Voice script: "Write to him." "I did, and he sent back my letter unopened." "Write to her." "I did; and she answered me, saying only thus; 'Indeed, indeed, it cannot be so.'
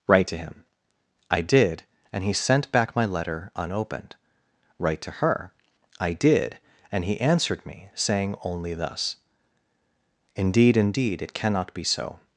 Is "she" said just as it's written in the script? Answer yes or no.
no